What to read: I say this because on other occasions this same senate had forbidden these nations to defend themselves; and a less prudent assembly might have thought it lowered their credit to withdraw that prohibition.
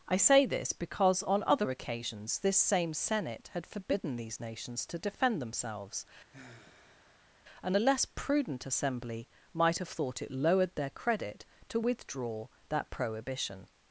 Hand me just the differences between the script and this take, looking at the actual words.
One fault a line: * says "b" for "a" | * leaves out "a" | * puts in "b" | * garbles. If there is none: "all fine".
all fine